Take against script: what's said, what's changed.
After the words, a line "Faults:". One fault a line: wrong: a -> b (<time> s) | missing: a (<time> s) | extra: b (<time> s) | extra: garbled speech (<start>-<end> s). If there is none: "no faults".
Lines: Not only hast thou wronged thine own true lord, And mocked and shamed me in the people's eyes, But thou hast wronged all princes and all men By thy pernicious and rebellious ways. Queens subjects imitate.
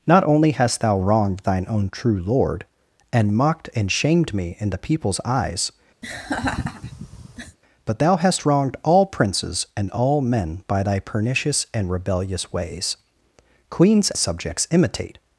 Not only hast thou wronged thine own true lord, And mocked and shamed me in the people's eyes, But thou hast wronged all princes and all men By thy pernicious and rebellious ways. Queens subjects imitate.
Faults:
no faults